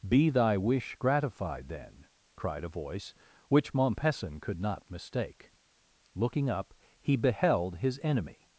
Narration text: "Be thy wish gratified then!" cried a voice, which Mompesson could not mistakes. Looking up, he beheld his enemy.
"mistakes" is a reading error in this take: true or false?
true